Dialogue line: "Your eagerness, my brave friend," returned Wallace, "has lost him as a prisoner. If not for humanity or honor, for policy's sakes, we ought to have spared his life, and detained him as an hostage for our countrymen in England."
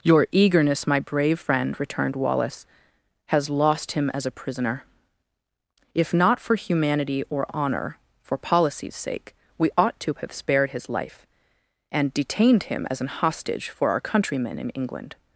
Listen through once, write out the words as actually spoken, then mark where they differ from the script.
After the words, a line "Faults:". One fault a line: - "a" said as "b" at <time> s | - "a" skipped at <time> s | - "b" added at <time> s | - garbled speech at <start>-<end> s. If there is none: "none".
"Your eagerness, my brave friend," returned Wallace, "has lost him as a prisoner. If not for humanity or honor, for policy's sake, we ought to have spared his life, and detained him as an hostage for our countrymen in England."
Faults:
- "sakes" said as "sake" at 9.0 s